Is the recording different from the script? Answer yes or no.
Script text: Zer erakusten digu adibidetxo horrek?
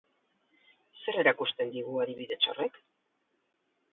no